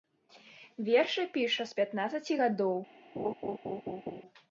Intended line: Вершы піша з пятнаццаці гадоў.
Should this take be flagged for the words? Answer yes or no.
no